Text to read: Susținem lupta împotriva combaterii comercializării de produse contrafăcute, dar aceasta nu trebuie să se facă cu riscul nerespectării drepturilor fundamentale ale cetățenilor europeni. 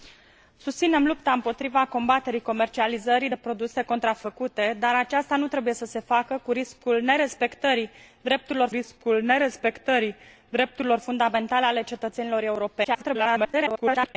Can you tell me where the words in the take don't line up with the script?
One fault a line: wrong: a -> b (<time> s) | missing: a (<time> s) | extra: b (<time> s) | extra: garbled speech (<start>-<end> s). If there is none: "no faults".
extra: riscul nerespectării drepturilor (8.7 s)
extra: garbled speech (12.8-14.2 s)